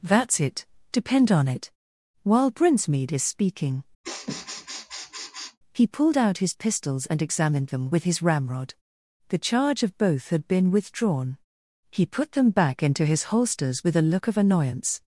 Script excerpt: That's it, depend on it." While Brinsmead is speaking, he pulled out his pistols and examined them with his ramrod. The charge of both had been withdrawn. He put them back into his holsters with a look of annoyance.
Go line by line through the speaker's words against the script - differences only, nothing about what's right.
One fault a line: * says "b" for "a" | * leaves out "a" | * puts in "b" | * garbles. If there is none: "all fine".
all fine